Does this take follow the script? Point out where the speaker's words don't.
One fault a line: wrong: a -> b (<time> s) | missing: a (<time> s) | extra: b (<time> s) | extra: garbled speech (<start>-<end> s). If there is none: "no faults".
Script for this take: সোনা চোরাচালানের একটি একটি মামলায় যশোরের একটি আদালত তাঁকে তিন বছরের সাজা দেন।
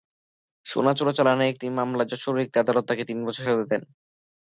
missing: একটি (1.6 s)